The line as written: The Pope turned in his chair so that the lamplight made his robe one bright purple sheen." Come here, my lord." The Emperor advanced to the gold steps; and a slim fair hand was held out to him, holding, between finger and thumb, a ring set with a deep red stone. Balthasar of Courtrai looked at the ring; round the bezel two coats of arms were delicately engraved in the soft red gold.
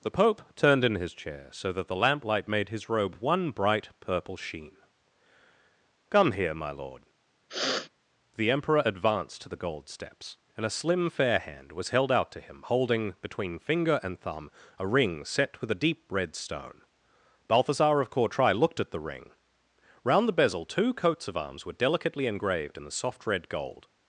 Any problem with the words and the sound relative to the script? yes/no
yes